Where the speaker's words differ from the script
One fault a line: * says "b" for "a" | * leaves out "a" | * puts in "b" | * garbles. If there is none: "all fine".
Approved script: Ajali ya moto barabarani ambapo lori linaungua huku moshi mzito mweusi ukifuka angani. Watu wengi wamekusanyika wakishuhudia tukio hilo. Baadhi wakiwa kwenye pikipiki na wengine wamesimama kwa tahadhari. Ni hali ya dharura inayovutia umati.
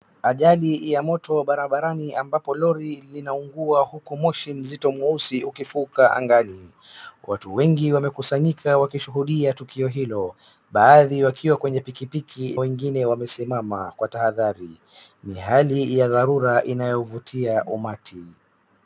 * leaves out "na"